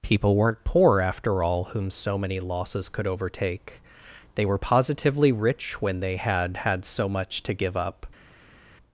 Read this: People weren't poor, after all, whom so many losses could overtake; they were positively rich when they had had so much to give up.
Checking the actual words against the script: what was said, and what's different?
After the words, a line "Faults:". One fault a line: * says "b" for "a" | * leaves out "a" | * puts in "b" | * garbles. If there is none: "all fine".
People weren't poor, after all, whom so many losses could overtake; they were positively rich when they had had so much to give up.
Faults:
all fine